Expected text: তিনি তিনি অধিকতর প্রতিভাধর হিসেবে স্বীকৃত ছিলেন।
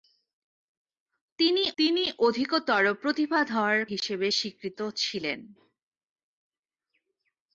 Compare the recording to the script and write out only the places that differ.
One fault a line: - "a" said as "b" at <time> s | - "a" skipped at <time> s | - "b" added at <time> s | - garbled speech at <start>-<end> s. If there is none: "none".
none